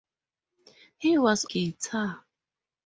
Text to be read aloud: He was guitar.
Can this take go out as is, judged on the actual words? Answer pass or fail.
pass